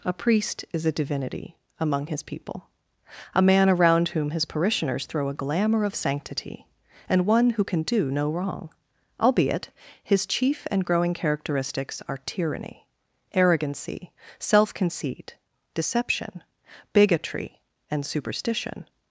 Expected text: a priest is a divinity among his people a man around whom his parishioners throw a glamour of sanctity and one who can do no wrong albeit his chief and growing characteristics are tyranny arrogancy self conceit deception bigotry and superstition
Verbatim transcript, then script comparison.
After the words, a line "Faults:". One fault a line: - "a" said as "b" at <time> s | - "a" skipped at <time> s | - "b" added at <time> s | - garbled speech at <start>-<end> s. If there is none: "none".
a priest is a divinity among his people a man around whom his parishioners throw a glamour of sanctity and one who can do no wrong albeit his chief and growing characteristics are tyranny arrogancy self conceit deception bigotry and superstition
Faults:
none